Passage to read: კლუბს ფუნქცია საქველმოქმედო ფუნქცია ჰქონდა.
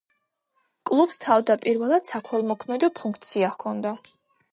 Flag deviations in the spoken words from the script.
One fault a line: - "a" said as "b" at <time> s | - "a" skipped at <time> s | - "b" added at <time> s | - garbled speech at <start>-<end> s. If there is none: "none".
- "ფუნქცია" said as "თავდაპირველად" at 1.2 s